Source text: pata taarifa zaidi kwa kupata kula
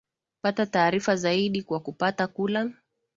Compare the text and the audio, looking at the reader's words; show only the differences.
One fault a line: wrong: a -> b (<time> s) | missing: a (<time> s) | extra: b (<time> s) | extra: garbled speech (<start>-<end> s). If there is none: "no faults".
no faults